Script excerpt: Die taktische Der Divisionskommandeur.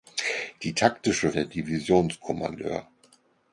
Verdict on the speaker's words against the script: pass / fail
pass